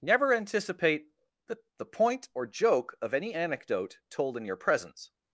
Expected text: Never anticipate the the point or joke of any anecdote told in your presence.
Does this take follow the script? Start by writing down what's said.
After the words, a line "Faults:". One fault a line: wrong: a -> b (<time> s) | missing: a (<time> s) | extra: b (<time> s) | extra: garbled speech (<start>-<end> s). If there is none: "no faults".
Never anticipate the the point or joke of any anecdote told in your presence.
Faults:
no faults